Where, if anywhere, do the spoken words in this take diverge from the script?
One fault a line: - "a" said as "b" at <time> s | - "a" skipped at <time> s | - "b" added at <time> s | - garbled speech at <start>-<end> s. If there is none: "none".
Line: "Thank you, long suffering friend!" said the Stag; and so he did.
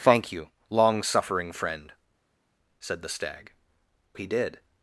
- "and so" skipped at 3.5 s